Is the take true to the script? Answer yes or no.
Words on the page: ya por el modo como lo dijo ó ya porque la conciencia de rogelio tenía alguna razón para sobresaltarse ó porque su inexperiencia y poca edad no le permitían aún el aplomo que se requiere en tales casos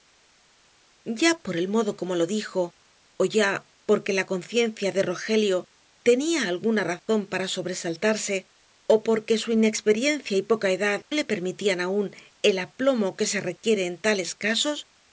no